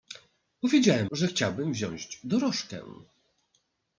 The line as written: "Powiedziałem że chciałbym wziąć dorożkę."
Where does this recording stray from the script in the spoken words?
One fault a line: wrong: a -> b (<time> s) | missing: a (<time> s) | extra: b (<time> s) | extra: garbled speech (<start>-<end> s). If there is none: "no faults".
no faults